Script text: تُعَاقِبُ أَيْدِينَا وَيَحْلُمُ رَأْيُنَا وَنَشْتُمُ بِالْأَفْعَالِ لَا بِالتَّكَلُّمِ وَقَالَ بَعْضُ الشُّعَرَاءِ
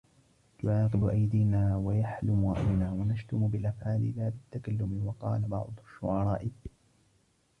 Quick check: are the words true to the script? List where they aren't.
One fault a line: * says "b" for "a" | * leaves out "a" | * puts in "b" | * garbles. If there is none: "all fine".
all fine